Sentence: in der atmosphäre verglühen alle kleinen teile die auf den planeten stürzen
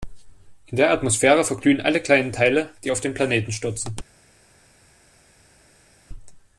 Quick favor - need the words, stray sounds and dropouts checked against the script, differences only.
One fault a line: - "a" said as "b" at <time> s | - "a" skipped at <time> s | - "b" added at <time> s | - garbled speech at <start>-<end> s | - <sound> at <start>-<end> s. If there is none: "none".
none